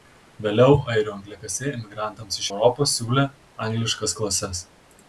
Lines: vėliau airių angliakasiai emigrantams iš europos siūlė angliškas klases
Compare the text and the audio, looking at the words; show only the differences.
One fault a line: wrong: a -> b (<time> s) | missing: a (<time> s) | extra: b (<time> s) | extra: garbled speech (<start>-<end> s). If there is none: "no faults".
no faults